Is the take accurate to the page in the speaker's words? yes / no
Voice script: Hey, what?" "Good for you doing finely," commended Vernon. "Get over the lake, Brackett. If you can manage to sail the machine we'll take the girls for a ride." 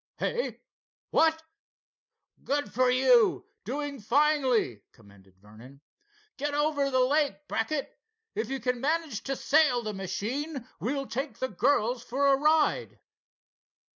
yes